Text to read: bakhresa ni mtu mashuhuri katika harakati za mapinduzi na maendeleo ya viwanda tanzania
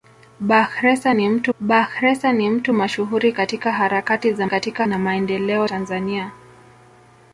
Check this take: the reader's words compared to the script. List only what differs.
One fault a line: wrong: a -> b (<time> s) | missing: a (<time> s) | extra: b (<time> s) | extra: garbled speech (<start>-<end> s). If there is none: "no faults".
extra: bakhresa ni mtu (1.6 s)
wrong: mapinduzi -> katika (4.5 s)
missing: ya viwanda (5.7 s)